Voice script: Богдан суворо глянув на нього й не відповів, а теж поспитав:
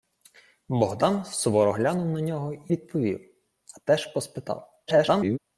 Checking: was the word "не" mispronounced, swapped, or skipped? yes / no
yes